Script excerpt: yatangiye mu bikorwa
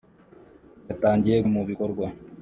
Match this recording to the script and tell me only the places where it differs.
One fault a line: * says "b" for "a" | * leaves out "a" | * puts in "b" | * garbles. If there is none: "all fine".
all fine